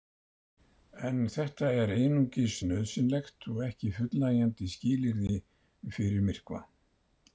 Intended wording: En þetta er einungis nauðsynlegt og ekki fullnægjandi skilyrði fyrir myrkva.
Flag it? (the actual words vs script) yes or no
no